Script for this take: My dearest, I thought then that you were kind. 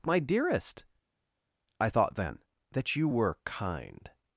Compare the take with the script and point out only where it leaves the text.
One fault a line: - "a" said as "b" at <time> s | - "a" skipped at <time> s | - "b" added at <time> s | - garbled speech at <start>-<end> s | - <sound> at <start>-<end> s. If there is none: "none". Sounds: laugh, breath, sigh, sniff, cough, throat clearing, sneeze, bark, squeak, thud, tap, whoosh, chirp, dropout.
none